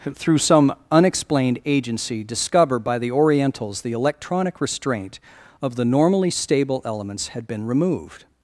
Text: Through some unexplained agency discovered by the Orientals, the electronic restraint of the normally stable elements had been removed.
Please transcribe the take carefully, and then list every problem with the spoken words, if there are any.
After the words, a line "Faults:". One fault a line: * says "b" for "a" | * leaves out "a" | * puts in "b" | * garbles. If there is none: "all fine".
Through some unexplained agency discover by the Orientals, the electronic restraint of the normally stable elements had been removed.
Faults:
* says "discover" for "discovered"